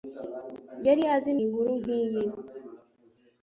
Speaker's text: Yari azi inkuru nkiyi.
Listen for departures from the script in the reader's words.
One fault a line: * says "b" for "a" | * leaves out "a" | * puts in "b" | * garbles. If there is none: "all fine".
all fine